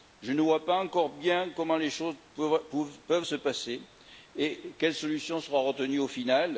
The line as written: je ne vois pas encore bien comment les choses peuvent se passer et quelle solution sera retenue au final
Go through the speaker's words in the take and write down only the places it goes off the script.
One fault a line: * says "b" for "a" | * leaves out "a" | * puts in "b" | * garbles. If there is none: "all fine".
all fine